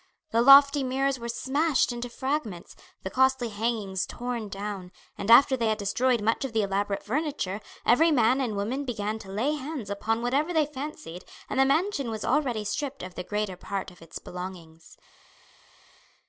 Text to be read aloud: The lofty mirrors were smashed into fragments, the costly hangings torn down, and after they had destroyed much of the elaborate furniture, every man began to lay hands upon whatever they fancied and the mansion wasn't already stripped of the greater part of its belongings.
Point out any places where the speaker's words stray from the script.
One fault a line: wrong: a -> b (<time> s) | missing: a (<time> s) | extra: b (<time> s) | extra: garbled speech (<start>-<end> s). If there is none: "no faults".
extra: and woman (8.4 s)
wrong: wasn't -> was (12.1 s)